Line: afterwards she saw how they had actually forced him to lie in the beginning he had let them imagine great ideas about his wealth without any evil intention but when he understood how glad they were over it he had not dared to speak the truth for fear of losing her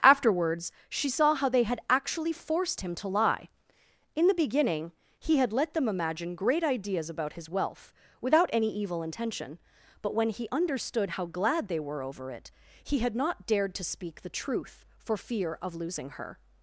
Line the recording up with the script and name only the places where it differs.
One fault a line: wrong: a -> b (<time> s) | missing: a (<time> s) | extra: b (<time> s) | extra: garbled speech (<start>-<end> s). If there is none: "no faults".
no faults